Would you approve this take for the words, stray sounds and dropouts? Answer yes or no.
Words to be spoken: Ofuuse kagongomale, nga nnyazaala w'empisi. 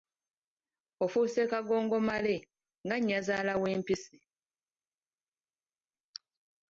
yes